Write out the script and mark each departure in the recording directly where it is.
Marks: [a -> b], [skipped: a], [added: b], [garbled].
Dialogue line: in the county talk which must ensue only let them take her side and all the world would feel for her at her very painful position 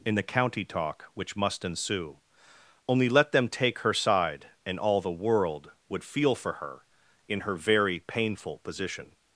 in the county talk which must ensue only let them take her side and all the world would feel for her [at -> in] her very painful position